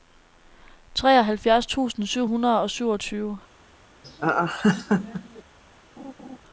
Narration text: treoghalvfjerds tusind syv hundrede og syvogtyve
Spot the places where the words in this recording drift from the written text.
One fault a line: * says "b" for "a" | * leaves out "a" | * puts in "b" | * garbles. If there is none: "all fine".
all fine